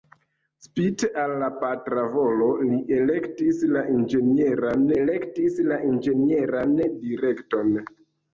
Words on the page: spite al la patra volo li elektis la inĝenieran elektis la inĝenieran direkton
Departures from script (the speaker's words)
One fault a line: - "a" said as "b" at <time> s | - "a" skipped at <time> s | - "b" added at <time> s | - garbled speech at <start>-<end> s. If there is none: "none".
none